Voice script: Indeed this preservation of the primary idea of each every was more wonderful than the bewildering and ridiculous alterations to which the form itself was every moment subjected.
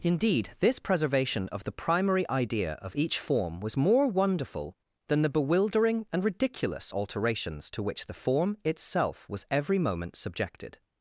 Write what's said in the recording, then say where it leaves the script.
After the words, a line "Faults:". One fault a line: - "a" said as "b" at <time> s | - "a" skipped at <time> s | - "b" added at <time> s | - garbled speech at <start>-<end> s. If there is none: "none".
Indeed this preservation of the primary idea of each form was more wonderful than the bewildering and ridiculous alterations to which the form itself was every moment subjected.
Faults:
- "every" said as "form" at 3.2 s